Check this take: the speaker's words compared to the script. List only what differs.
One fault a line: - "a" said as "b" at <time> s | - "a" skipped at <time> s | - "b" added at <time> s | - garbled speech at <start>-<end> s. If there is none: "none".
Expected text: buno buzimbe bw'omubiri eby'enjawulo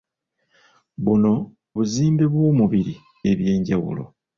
none